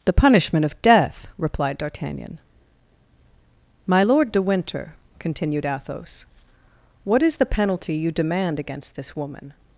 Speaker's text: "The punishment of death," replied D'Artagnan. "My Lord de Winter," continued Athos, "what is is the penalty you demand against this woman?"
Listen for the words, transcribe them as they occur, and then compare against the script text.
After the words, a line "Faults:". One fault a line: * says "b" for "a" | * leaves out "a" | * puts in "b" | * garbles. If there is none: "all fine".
"The punishment of death," replied D'Artagnan. "My Lord de Winter," continued Athos, "what is the penalty you demand against this woman?"
Faults:
* leaves out "is"